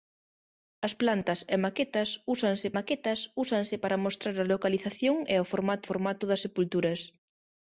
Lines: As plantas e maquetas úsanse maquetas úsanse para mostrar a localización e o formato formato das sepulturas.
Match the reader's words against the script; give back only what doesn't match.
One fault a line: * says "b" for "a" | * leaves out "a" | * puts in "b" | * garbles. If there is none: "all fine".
all fine